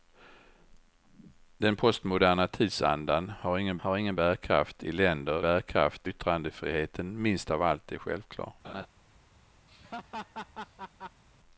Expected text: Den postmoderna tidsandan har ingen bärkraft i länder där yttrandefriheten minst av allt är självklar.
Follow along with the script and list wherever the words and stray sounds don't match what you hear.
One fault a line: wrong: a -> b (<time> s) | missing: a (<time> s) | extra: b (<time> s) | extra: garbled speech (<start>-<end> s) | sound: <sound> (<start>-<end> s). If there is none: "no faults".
extra: har ingen (3.8 s)
wrong: där -> bärkraft (5.4 s)
sound: laugh (8.6-8.9 s)
sound: laugh (9.7-11.2 s)